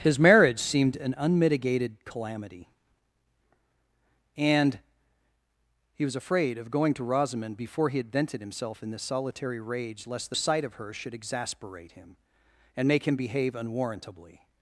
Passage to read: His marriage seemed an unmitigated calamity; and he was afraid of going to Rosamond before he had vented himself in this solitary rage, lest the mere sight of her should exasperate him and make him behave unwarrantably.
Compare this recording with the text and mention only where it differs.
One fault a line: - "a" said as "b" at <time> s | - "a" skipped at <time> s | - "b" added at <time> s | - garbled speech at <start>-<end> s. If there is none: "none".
- "mere" skipped at 10.3 s